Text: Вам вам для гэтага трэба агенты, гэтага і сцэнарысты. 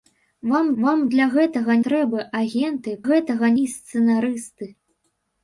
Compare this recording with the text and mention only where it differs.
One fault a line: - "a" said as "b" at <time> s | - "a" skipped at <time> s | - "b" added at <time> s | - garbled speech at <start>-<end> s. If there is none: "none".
none